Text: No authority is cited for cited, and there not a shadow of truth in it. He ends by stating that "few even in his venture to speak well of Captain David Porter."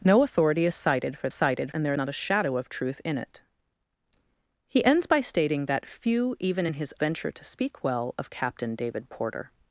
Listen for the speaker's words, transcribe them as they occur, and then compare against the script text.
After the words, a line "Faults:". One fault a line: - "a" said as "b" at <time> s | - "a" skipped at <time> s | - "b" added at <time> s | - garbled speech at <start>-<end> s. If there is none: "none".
No authority is cited for cited, and there not a shadow of truth in it. He ends by stating that "few even in his venture to speak well of Captain David Porter."
Faults:
none